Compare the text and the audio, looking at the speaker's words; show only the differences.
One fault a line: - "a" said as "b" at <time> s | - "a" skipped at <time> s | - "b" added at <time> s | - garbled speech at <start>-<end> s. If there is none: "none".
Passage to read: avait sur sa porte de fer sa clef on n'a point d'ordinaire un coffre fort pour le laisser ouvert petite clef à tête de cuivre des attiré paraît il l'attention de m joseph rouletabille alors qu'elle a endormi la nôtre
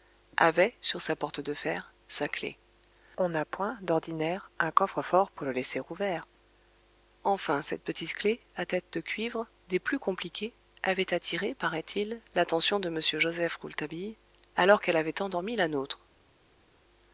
- "enfin cette" added at 7.2 s
- "plus compliquées avait" added at 9.8 s
- "a" said as "avait" at 15.0 s